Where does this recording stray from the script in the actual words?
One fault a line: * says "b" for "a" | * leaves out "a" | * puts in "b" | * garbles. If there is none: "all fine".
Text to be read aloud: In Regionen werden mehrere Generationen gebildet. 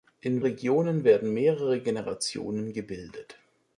all fine